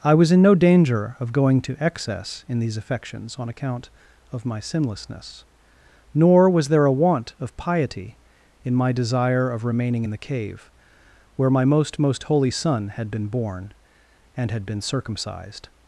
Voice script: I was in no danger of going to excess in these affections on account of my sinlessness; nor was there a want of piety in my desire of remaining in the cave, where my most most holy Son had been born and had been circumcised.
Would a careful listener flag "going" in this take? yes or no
no